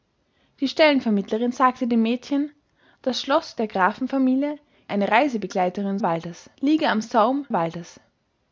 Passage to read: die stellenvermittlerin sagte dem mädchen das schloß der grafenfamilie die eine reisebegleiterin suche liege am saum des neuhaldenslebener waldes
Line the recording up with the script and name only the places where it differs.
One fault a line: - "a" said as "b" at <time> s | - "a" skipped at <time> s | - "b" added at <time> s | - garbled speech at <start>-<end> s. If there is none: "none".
- "die" skipped at 4.6 s
- "suche" said as "waldes" at 6.0 s
- "des neuhaldenslebener" skipped at 7.5 s